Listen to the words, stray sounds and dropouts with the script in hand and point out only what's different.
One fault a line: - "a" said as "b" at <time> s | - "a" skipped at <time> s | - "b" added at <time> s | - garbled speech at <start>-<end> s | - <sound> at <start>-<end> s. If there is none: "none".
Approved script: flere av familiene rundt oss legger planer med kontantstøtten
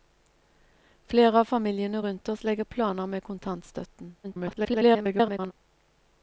- garbled speech at 4.2-5.5 s